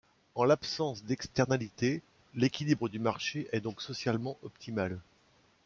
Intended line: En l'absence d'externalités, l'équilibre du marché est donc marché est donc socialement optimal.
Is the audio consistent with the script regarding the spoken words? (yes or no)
no